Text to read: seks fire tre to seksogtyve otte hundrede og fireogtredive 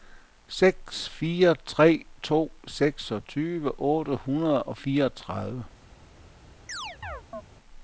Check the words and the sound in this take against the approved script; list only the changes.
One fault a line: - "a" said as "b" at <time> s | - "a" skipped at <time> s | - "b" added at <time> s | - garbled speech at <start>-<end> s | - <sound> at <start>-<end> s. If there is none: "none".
- chirp at 6.7-7.4 s